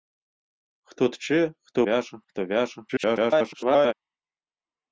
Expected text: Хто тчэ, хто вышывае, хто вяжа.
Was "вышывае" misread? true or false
true